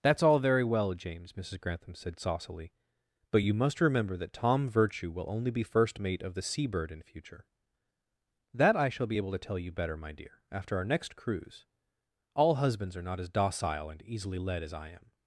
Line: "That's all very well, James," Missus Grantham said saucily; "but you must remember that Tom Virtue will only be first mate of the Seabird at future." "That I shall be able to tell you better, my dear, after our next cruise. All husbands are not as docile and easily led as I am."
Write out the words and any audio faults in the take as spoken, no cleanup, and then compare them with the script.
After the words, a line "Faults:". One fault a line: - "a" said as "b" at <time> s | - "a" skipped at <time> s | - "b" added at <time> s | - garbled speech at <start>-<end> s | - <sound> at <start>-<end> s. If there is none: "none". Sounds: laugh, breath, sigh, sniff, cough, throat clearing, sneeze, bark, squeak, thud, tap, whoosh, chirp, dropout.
"That's all very well, James," Missus Grantham said saucily; "but you must remember that Tom Virtue will only be first mate of the Seabird in future." "That I shall be able to tell you better, my dear, after our next cruise. All husbands are not as docile and easily led as I am."
Faults:
- "at" said as "in" at 6.9 s